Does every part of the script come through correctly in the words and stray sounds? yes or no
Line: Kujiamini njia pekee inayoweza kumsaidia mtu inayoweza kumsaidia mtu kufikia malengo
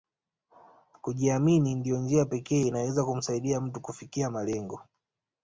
no